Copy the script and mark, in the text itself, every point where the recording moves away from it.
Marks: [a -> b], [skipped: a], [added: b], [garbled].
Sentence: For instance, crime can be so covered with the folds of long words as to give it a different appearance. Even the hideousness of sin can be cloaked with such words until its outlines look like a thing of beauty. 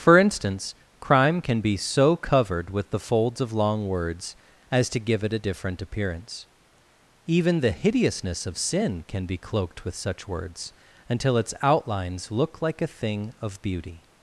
For instance, crime can be so covered with the folds of long words as to give it a different appearance. Even the hideousness of sin can be cloaked with such words until its outlines look like a thing of beauty.